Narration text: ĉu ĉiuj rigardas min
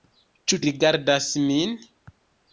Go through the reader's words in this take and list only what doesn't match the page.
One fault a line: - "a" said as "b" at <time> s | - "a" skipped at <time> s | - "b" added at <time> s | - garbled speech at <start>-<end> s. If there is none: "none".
- "ĉiuj" skipped at 0.6 s